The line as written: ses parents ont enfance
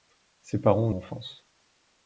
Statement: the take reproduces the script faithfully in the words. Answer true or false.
true